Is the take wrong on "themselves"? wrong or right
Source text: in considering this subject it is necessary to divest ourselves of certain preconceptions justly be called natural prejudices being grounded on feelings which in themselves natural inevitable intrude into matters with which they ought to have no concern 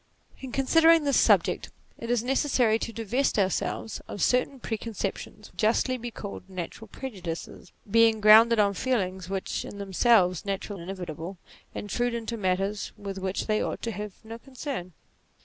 right